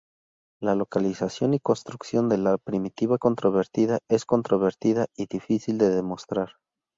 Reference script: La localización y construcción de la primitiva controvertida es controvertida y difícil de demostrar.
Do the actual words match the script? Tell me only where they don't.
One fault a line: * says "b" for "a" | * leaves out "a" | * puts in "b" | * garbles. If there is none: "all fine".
all fine